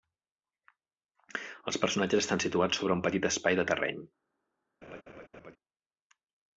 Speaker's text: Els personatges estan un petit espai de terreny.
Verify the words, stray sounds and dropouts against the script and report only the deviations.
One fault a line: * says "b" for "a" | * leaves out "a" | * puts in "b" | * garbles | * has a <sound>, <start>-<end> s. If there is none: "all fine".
* puts in "situats sobre"
* has a laugh, 4.8-5.6 s